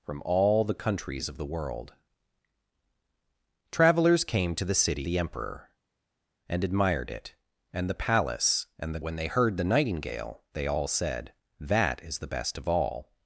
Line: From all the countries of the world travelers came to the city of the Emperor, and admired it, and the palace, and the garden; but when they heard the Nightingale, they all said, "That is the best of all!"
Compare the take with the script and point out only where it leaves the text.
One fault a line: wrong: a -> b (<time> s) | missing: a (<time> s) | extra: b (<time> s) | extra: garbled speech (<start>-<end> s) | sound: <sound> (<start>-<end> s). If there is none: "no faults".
missing: of (5.1 s)
missing: garden but (9.0 s)